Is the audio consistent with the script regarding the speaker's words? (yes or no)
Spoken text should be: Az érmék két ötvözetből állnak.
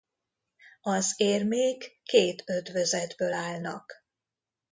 yes